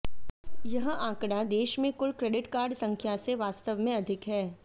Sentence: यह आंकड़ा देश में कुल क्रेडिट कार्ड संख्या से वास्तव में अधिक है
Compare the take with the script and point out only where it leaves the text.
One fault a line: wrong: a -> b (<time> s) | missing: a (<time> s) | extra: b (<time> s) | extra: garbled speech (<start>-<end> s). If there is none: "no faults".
no faults